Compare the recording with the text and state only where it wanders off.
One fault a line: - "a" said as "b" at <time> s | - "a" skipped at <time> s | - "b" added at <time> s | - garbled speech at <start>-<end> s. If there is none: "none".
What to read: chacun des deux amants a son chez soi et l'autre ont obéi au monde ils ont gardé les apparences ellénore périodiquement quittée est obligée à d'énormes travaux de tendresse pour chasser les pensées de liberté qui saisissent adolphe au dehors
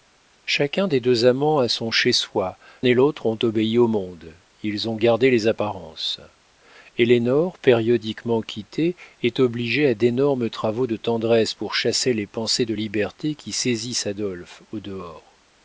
none